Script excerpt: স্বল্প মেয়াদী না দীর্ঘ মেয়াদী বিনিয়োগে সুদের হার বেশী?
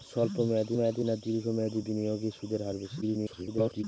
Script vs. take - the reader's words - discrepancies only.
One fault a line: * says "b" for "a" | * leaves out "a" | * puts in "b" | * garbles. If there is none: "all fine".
* puts in "মেয়াদী"
* garbles